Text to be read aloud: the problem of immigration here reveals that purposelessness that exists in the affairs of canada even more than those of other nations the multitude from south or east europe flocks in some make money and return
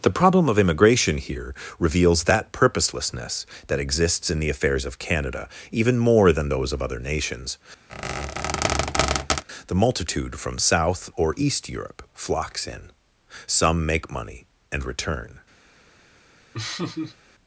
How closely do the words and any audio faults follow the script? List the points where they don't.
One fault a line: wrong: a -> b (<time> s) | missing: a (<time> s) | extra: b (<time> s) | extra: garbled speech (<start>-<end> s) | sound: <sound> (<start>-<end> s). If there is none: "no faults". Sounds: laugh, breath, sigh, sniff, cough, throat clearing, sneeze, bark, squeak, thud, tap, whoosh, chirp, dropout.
sound: squeak (7.9-9.4 s)
sound: laugh (16.5-17.2 s)